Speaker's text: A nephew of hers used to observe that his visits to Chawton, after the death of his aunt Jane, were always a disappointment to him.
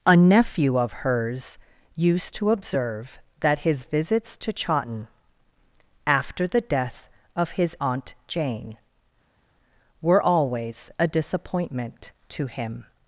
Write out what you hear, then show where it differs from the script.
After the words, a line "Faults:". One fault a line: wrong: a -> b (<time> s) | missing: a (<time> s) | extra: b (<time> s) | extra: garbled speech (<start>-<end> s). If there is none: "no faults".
A nephew of hers used to observe that his visits to Chawton, after the death of his aunt Jane, were always a disappointment to him.
Faults:
no faults